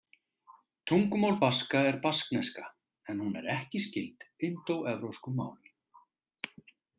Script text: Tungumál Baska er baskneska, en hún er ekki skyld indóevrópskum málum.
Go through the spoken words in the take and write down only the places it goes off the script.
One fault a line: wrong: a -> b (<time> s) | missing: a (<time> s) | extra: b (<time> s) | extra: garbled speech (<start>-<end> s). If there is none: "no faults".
no faults